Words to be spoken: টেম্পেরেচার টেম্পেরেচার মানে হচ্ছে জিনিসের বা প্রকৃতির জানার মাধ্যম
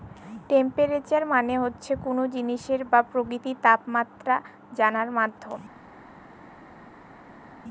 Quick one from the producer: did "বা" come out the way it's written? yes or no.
yes